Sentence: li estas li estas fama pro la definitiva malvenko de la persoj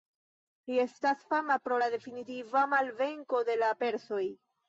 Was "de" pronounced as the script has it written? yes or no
yes